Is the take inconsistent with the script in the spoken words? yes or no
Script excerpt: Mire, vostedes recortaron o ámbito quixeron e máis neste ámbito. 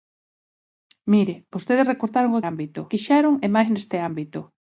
no